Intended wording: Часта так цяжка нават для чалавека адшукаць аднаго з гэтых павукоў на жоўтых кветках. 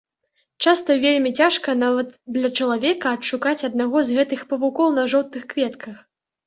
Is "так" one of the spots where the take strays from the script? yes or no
yes